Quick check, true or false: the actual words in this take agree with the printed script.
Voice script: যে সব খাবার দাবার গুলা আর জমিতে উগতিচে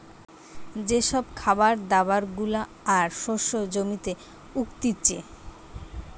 false